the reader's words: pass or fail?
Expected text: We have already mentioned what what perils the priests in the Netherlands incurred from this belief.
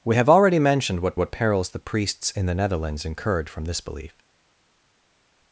pass